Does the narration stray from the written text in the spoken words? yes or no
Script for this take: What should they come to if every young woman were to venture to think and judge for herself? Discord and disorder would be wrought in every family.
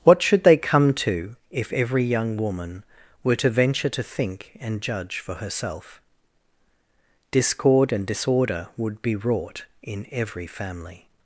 no